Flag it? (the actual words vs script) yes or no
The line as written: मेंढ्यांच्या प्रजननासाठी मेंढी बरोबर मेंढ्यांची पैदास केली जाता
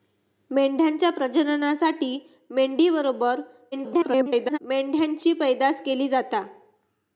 yes